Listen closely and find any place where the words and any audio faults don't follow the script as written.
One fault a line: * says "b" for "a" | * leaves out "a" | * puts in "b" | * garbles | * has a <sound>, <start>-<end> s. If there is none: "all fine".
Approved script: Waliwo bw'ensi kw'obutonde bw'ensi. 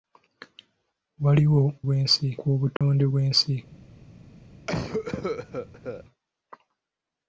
* has a dropout, 2.8-2.8 s
* has a cough, 4.7-6.0 s